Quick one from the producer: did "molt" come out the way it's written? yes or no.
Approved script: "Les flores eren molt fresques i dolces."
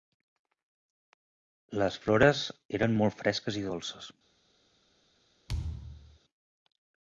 yes